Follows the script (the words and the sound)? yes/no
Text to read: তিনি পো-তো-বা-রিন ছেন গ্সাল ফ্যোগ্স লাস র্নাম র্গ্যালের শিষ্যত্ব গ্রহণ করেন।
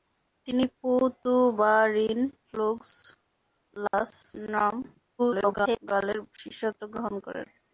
no